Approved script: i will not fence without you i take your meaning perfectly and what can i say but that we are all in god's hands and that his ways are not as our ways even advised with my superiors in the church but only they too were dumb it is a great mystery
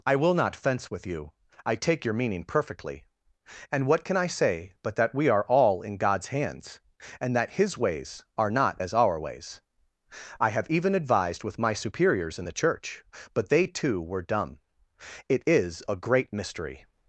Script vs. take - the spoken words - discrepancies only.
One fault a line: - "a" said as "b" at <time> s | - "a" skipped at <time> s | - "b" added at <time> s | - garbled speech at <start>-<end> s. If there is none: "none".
- "without" said as "with" at 0.9 s
- "i have" added at 10.4 s
- "only" skipped at 13.5 s